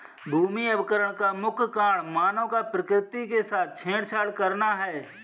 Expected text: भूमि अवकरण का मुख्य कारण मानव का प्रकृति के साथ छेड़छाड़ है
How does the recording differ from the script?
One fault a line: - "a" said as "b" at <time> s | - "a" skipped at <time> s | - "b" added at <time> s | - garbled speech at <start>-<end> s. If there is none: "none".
- "करना" added at 4.3 s